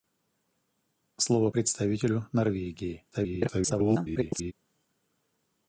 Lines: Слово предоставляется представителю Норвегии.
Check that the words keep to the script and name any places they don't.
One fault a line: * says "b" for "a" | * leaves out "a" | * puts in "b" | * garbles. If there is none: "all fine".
* leaves out "предоставляется"
* garbles